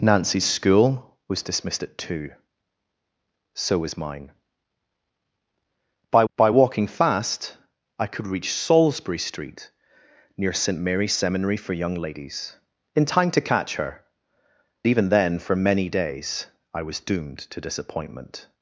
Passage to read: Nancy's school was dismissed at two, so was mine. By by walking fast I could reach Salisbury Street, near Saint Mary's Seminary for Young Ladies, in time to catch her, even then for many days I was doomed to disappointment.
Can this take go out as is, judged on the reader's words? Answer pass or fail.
pass